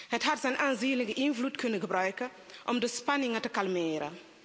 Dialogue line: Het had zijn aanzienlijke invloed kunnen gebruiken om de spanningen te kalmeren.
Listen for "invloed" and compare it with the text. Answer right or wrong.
right